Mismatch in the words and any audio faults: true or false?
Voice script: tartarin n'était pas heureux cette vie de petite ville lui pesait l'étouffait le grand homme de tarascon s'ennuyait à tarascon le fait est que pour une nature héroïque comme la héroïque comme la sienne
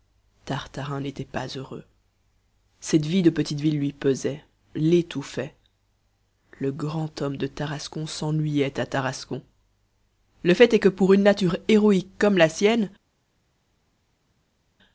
true